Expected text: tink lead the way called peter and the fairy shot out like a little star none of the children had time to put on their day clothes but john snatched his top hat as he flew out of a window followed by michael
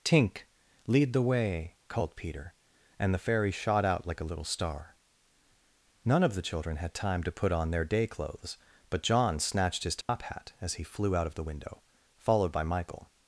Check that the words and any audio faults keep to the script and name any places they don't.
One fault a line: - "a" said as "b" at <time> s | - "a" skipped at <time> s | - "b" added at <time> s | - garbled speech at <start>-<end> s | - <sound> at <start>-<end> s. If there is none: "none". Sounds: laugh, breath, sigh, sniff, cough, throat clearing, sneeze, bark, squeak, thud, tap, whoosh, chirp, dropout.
- dropout at 10.0-10.1 s
- "a" said as "the" at 11.3 s